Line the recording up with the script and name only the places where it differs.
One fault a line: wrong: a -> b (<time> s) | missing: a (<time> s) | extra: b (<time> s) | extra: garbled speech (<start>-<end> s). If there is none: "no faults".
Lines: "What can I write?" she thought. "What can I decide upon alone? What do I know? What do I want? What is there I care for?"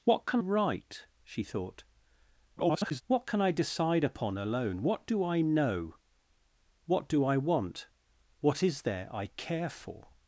missing: I (0.4 s)
extra: garbled speech (2.6-3.0 s)